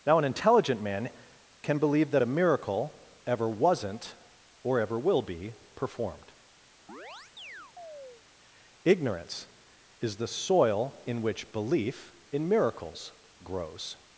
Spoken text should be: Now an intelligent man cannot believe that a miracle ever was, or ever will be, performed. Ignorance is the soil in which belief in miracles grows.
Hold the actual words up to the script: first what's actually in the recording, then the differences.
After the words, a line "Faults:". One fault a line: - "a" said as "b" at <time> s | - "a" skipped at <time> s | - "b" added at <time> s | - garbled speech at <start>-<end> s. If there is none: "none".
Now an intelligent man can believe that a miracle ever wasn't, or ever will be, performed. Ignorance is the soil in which belief in miracles grows.
Faults:
- "cannot" said as "can" at 1.6 s
- "was" said as "wasn't" at 3.5 s